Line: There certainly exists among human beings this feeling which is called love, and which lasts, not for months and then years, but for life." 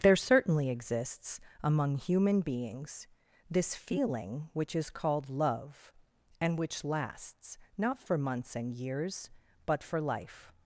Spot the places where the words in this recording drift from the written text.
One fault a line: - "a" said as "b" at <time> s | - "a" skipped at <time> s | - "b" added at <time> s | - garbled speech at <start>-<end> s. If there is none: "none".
- "then" skipped at 8.7 s